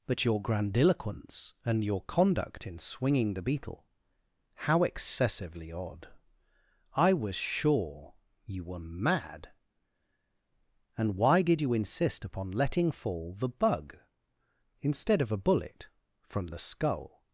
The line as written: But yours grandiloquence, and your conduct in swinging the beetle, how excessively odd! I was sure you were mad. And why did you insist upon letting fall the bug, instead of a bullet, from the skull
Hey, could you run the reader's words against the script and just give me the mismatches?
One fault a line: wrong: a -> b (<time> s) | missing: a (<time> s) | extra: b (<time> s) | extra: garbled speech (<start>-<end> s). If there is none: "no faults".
wrong: yours -> your (0.2 s)